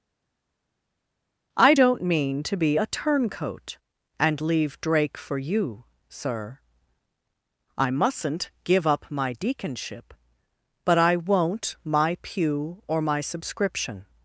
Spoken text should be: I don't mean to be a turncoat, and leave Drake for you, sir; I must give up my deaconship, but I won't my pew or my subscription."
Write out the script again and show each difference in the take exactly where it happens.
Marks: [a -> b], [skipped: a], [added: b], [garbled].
I don't mean to be a turncoat, and leave Drake for you, sir; I [must -> mustn't] give up my deaconship, but I won't my pew or my subscription."